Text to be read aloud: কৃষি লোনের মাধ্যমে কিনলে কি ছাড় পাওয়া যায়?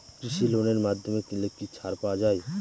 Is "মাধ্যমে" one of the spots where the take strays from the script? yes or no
no